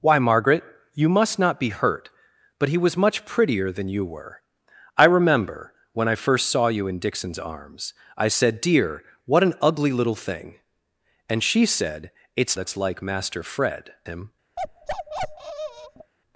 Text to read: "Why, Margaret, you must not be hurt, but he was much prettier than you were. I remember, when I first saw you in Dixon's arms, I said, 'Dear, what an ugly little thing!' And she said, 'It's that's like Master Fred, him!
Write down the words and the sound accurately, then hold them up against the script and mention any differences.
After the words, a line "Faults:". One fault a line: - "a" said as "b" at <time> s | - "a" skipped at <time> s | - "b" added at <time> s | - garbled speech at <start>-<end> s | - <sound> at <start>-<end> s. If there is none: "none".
"Why, Margaret, you must not be hurt, but he was much prettier than you were. I remember, when I first saw you in Dixon's arms, I said, 'Dear, what an ugly little thing!' And she said, 'It's that's like Master Fred, him!
Faults:
- bark at 14.6-16.1 s